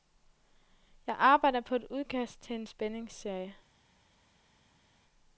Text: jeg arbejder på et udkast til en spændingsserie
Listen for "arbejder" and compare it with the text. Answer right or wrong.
right